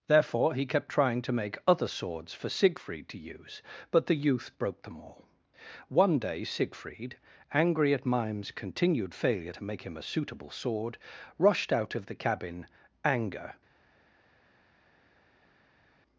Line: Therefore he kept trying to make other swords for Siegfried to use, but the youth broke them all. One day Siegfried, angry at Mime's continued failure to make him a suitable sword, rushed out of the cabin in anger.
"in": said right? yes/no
no